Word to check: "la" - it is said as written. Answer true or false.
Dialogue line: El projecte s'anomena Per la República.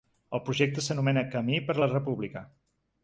true